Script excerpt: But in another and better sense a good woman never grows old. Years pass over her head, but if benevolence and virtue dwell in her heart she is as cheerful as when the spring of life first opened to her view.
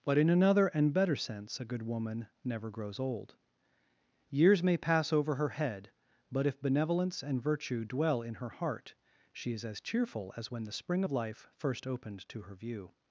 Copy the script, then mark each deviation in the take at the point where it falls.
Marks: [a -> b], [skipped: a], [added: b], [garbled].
But in another and better sense a good woman never grows old. Years [added: may] pass over her head, but if benevolence and virtue dwell in her heart she is as cheerful as when the spring of life first opened to her view.